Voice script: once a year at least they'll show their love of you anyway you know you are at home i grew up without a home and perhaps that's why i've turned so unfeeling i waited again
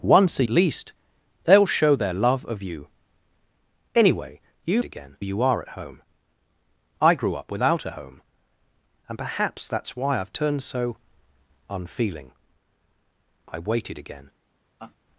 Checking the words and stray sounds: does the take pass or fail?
fail